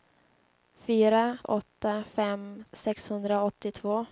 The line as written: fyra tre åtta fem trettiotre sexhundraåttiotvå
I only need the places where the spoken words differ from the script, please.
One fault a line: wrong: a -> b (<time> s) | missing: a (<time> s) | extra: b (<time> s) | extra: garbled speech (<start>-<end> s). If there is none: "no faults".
missing: tre (1.4 s)
missing: trettiotre (2.6 s)